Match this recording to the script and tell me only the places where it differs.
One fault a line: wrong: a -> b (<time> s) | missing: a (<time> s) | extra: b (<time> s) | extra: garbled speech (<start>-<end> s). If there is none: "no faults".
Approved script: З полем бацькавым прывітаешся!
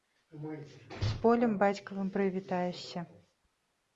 no faults